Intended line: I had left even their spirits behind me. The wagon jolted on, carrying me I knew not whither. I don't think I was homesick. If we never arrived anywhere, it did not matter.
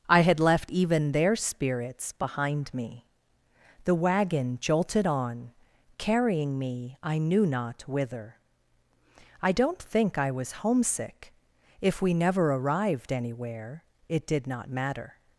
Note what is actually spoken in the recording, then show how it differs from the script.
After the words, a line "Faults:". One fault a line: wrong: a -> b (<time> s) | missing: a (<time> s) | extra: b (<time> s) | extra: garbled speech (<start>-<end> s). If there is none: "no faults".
I had left even their spirits behind me. The wagon jolted on, carrying me I knew not whither. I don't think I was homesick. If we never arrived anywhere, it did not matter.
Faults:
no faults